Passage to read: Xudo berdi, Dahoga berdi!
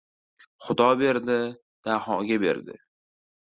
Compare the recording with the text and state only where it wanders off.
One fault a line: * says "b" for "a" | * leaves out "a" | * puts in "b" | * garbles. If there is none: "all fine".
all fine